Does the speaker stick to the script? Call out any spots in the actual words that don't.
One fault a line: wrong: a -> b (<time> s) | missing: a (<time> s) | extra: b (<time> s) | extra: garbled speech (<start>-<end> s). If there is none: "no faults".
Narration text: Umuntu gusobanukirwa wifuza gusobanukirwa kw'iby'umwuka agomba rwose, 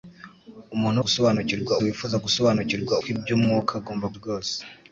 no faults